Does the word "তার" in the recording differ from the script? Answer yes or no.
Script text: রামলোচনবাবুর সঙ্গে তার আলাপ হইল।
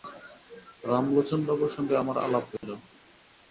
yes